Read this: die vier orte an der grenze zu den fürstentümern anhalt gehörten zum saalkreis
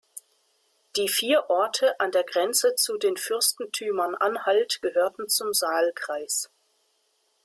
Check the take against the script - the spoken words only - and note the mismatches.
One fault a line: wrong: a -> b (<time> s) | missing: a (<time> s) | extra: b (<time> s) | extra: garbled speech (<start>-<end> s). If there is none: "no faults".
no faults